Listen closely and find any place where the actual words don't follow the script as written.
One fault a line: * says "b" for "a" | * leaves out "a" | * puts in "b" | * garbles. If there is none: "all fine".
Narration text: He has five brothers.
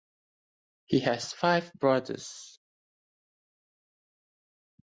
all fine